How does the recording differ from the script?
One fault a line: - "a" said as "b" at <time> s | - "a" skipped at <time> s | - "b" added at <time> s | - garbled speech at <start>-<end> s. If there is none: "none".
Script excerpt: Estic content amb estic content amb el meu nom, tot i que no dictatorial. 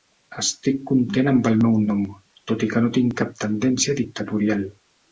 - "estic content amb" skipped at 1.5 s
- "tinc cap tendència" added at 3.0 s